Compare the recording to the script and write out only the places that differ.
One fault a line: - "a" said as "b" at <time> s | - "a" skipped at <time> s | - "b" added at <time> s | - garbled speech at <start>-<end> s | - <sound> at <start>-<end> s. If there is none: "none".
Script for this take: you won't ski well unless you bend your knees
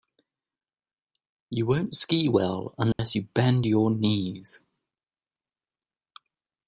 - dropout at 2.9-3.0 s